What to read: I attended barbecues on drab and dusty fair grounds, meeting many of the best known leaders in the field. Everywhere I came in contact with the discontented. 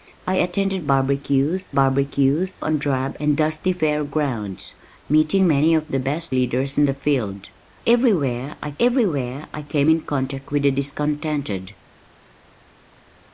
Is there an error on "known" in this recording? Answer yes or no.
yes